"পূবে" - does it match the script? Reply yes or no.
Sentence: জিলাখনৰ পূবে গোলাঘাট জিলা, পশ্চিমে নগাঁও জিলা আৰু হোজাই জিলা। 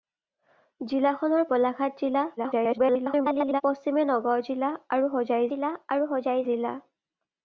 no